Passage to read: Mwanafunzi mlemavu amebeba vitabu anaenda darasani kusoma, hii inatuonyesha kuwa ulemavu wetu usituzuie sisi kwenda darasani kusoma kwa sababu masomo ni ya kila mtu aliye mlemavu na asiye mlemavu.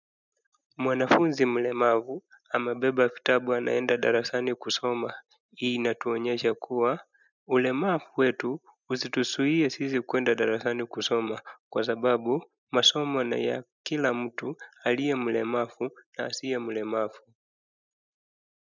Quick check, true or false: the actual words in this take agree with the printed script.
true